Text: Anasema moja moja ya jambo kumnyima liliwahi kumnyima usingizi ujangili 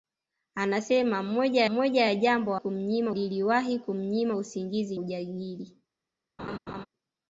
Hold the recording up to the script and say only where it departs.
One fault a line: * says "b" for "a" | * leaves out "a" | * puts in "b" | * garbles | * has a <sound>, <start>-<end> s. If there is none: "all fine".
* has a laugh, 6.4-6.9 s